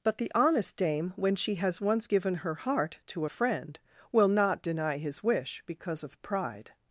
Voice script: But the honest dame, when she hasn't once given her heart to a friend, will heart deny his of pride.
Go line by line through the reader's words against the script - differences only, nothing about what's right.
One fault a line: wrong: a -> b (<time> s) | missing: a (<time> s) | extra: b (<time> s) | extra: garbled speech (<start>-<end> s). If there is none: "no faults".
wrong: hasn't -> has (1.6 s)
wrong: heart -> not (4.3 s)
extra: wish because (5.2 s)